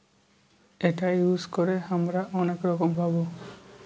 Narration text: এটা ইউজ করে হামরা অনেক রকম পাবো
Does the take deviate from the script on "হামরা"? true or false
false